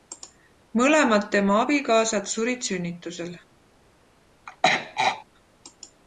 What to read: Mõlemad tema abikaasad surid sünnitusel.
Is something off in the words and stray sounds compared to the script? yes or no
yes